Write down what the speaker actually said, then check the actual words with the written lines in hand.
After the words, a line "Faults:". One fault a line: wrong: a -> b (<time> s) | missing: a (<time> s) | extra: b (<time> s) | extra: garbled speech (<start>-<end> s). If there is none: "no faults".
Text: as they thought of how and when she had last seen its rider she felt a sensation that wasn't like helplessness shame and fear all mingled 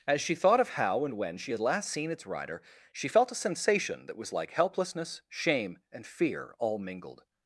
as she thought of how and when she had last seen its rider she felt a sensation that was like helplessness shame and fear all mingled
Faults:
wrong: they -> she (0.2 s)
wrong: wasn't -> was (4.2 s)